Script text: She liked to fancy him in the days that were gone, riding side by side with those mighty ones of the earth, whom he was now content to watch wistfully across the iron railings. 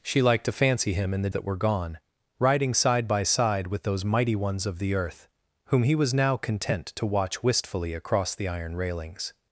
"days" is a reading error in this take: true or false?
true